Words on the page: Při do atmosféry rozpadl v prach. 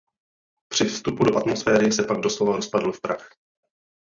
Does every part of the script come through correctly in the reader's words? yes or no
no